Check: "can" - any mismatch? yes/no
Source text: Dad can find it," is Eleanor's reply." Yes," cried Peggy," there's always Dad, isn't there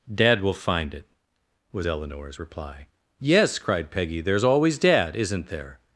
yes